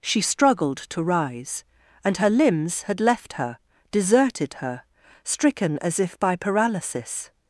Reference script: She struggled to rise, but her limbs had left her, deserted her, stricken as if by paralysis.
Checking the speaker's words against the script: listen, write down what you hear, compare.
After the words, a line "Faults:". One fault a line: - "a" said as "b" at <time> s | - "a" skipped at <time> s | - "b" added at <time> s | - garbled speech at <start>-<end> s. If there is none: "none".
She struggled to rise, and her limbs had left her, deserted her, stricken as if by paralysis.
Faults:
- "but" said as "and" at 2.0 s